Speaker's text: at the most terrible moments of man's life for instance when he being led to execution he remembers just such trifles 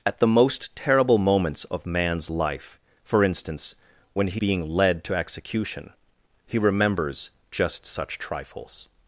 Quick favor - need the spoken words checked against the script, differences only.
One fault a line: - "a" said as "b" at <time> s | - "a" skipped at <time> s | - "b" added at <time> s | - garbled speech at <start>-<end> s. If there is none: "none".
none